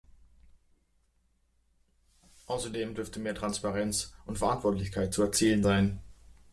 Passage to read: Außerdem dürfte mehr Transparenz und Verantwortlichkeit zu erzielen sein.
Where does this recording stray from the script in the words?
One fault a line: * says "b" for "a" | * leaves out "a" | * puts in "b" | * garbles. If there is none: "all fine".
all fine